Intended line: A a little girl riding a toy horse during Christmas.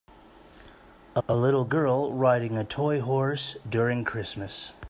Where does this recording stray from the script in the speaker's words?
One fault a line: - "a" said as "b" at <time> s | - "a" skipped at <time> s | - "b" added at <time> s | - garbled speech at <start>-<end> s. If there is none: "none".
none